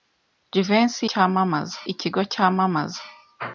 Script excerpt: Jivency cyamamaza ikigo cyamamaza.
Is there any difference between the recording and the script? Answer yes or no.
no